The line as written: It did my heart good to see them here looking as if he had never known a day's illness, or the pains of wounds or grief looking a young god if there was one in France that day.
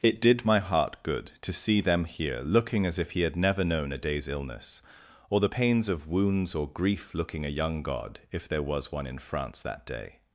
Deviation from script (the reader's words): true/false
false